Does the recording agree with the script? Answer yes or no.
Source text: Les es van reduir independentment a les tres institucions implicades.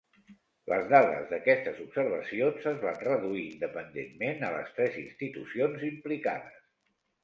no